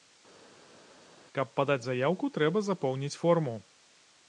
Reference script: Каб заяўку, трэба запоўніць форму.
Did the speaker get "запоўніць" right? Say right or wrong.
right